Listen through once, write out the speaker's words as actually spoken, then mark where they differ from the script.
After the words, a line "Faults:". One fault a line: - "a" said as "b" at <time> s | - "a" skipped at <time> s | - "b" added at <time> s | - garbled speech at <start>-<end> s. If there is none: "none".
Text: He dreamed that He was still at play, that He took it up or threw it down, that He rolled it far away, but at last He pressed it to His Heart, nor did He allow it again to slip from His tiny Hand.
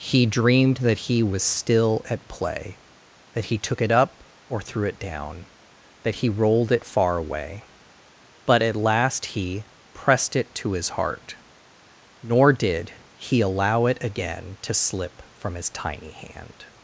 He dreamed that He was still at play, that He took it up or threw it down, that He rolled it far away, but at last He pressed it to His Heart, nor did He allow it again to slip from His tiny Hand.
Faults:
none